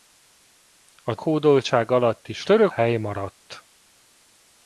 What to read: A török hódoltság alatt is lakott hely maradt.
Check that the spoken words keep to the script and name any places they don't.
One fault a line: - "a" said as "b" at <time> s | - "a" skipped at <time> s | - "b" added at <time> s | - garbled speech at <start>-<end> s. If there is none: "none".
- "török" skipped at 1.1 s
- "lakott" said as "török" at 2.4 s